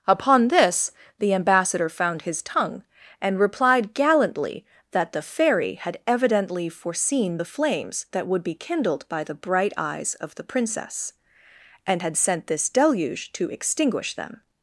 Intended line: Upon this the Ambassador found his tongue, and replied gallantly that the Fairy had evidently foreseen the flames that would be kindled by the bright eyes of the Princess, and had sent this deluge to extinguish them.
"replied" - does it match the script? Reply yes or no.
yes